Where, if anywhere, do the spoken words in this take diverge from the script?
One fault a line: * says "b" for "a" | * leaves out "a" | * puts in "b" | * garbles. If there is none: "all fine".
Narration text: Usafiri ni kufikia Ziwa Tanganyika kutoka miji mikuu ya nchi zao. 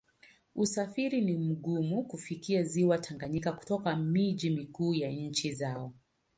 * puts in "mgumu"